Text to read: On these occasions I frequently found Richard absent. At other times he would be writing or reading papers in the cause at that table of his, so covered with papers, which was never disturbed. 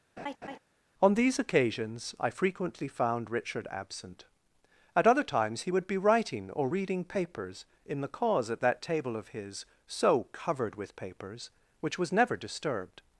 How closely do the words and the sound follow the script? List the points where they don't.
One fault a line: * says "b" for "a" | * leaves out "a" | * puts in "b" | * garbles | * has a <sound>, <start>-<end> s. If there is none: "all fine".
* has a laugh, 0.2-0.6 s